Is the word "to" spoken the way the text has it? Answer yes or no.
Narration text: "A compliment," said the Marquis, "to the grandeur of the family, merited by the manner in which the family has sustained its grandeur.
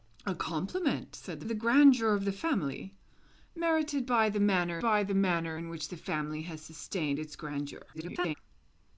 no